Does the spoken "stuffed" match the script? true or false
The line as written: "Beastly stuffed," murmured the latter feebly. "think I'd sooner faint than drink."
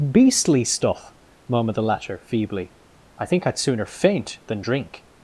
false